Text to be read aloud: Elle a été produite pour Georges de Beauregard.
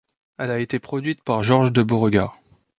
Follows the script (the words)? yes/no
no